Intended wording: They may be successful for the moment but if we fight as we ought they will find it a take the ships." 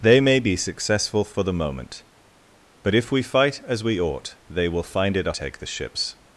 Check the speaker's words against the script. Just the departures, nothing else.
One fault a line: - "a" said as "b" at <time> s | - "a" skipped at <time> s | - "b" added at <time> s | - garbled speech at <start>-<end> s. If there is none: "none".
none